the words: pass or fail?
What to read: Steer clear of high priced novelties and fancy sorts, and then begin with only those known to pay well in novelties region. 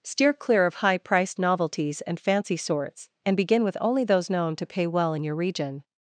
fail